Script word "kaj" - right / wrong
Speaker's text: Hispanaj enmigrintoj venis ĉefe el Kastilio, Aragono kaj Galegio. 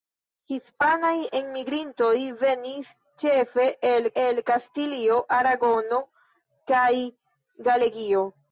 right